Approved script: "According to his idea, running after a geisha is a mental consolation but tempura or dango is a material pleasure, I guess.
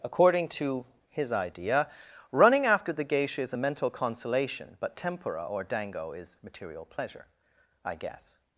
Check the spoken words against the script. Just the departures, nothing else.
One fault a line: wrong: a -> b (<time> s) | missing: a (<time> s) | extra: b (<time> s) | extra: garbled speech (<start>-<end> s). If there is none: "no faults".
wrong: a -> the (2.9 s)
missing: a (6.4 s)